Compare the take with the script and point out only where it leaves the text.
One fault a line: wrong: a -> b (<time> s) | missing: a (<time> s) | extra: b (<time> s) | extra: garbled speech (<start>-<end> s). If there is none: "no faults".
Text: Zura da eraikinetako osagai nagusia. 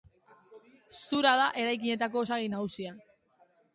no faults